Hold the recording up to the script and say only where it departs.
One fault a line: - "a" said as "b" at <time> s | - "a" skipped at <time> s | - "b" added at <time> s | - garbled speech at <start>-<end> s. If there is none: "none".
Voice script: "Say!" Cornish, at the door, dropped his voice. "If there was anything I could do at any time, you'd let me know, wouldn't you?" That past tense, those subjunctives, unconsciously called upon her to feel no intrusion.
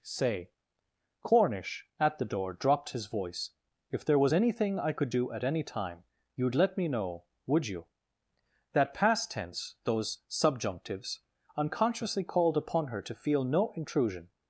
- "wouldn't" said as "would" at 7.5 s